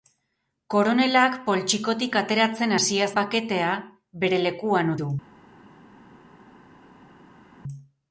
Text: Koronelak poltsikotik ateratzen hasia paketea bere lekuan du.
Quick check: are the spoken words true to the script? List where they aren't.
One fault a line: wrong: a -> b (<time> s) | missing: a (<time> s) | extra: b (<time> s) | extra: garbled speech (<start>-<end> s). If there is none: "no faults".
no faults